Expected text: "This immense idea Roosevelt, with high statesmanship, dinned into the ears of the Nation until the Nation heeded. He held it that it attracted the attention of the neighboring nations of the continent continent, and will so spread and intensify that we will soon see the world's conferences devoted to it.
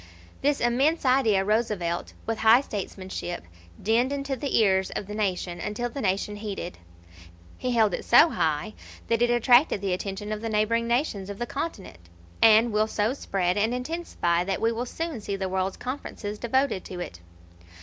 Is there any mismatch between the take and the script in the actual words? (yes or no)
yes